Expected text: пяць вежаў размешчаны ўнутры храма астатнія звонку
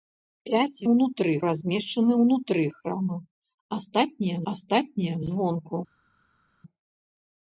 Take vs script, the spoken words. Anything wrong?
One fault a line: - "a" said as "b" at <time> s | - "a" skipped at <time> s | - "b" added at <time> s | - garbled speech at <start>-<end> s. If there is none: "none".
- "вежаў" said as "ўнутры" at 0.9 s
- "астатнія" added at 4.5 s